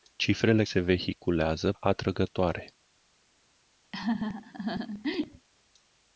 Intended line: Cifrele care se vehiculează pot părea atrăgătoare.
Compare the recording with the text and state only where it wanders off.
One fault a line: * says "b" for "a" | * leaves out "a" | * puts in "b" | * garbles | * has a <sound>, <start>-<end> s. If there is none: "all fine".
* leaves out "care"
* leaves out "pot părea"
* has a laugh, 3.9-5.5 s